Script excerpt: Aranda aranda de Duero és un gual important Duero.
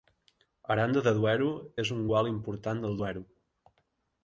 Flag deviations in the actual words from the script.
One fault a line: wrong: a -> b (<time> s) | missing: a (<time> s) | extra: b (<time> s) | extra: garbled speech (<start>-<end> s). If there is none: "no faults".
missing: aranda (1.0 s)
extra: del (2.9 s)